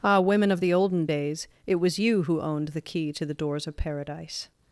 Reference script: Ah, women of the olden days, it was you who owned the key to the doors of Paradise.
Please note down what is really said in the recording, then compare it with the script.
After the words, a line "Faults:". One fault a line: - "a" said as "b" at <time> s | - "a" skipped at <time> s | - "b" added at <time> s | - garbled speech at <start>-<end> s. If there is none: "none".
Ah, women of the olden days, it was you who owned the key to the doors of Paradise.
Faults:
none